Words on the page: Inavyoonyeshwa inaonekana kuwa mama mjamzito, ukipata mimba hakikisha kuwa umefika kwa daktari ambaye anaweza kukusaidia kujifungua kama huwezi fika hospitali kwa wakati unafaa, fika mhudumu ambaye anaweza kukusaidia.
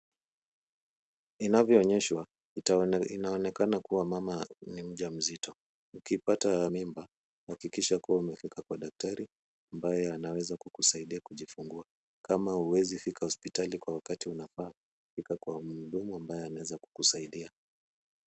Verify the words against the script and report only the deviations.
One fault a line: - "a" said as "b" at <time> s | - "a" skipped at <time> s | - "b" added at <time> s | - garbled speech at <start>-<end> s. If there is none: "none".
- "ni" added at 4.7 s
- "kwa" added at 15.4 s